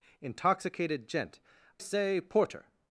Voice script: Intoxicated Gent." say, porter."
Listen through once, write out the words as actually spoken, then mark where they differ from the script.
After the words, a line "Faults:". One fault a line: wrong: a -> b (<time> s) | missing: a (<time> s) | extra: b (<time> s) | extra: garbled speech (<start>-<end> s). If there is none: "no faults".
Intoxicated Gent." say, porter."
Faults:
no faults